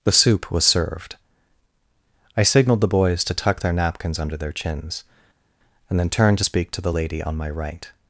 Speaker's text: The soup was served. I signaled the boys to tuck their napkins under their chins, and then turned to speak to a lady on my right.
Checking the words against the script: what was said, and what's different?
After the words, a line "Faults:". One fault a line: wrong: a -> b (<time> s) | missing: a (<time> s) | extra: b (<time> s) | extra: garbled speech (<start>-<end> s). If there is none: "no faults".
The soup was served. I signaled the boys to tuck their napkins under their chins, and then turned to speak to the lady on my right.
Faults:
wrong: a -> the (6.8 s)